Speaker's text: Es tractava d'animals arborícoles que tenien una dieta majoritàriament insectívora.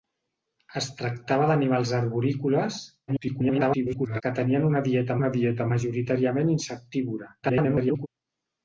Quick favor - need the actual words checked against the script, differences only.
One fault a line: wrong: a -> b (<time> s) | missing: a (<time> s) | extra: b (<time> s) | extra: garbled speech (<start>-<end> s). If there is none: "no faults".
extra: garbled speech (3.1-4.2 s)
extra: una dieta (5.2 s)
extra: garbled speech (7.4-8.1 s)